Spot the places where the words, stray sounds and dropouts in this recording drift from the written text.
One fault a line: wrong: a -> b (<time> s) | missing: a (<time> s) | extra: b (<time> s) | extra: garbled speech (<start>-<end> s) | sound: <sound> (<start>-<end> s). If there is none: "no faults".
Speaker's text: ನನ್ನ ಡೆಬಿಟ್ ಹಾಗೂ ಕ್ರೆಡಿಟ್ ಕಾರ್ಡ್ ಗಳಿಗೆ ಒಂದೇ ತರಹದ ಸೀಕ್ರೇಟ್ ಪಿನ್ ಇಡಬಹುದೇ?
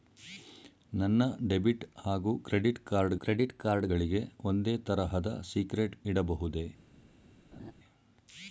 extra: ಕ್ರೆಡಿಟ್ ಕಾರ್ಡ್ (3.2 s)
missing: ಪಿನ್ (6.0 s)
sound: laugh (7.5-7.7 s)